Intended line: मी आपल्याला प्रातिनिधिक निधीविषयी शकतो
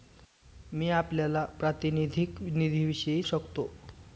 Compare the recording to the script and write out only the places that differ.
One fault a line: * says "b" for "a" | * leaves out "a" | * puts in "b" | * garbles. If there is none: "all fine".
all fine